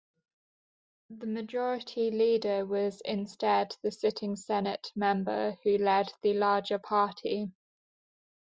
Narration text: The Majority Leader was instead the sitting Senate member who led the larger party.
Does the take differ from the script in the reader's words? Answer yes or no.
no